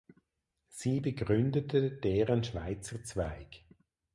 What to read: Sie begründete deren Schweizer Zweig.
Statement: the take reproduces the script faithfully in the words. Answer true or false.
true